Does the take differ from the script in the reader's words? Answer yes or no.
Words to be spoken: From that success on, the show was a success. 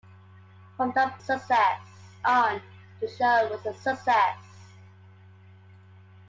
no